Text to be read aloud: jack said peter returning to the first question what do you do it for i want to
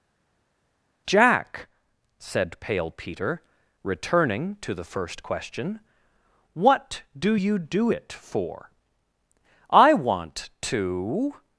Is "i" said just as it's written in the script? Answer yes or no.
yes